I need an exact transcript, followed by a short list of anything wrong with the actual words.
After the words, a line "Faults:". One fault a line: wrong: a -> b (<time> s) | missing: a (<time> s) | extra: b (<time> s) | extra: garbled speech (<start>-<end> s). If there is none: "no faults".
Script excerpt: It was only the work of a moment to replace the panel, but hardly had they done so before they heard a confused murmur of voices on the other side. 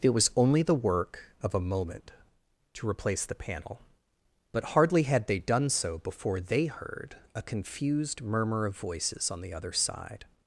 It was only the work of a moment to replace the panel, but hardly had they done so before they heard a confused murmur of voices on the other side.
Faults:
no faults